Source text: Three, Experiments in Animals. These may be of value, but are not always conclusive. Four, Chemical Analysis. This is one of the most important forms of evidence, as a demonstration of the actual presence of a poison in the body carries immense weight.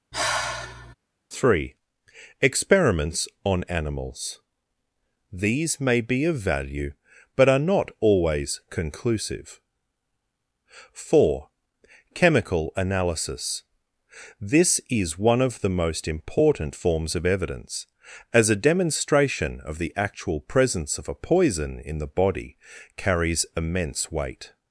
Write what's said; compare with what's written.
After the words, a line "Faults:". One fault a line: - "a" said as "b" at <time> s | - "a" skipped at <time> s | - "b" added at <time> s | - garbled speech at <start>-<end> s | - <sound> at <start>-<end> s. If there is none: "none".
Three, Experiments on Animals. These may be of value, but are not always conclusive. Four, Chemical Analysis. This is one of the most important forms of evidence, as a demonstration of the actual presence of a poison in the body carries immense weight.
Faults:
- sigh at 0.1-0.9 s
- "in" said as "on" at 3.4 s